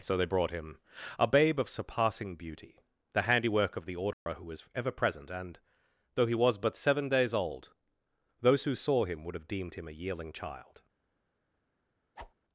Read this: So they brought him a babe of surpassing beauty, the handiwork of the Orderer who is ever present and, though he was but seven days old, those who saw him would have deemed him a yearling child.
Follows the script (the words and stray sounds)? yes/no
no